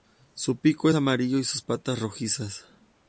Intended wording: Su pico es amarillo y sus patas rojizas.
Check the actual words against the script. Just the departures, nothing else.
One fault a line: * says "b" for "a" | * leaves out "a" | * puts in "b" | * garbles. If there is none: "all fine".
* leaves out "es"